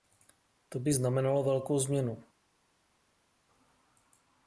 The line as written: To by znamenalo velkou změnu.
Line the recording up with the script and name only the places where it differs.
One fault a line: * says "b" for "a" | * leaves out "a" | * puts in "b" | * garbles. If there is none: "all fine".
all fine